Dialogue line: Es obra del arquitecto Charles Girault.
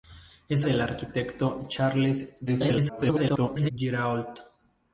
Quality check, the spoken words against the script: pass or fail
fail